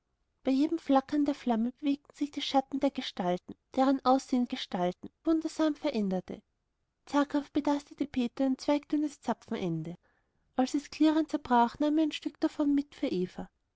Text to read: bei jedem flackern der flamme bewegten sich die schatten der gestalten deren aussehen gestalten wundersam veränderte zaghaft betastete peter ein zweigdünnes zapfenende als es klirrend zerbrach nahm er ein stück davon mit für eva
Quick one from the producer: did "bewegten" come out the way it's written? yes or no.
yes